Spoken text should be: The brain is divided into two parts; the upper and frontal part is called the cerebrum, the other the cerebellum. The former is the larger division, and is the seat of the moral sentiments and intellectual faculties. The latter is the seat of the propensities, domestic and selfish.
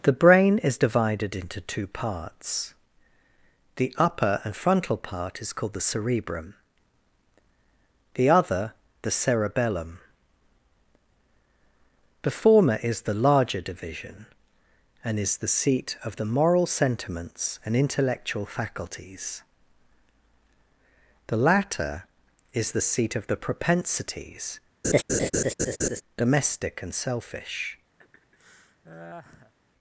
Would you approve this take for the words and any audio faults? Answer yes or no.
no